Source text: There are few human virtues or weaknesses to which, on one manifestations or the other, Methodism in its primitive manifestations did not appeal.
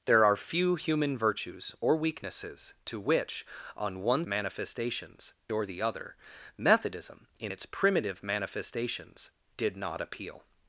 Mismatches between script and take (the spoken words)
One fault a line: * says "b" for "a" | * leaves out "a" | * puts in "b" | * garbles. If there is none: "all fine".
all fine